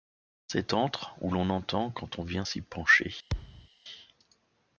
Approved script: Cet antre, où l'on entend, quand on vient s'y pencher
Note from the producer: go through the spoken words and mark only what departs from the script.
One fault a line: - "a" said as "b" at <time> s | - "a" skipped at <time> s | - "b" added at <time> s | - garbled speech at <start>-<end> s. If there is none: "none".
none